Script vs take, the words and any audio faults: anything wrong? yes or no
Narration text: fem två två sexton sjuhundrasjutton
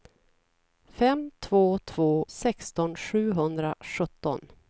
no